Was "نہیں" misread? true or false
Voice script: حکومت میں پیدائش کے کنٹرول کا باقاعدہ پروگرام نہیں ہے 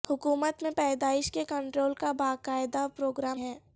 true